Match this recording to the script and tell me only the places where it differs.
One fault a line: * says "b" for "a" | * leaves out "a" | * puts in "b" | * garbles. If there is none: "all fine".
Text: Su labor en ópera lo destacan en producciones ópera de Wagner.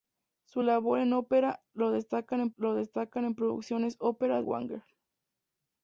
* puts in "lo destacan en"
* leaves out "de"